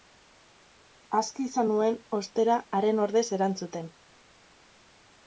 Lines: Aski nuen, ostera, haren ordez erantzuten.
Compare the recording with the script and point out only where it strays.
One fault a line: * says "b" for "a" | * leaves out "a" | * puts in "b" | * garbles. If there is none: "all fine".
* puts in "izan"